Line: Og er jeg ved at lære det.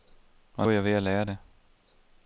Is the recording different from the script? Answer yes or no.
no